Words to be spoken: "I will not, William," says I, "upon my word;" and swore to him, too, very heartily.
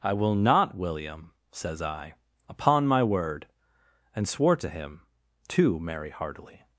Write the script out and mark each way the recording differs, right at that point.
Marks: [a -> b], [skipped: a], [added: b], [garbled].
"I will not, William," says I, "upon my word;" and swore to him, too, [very -> merry] heartily.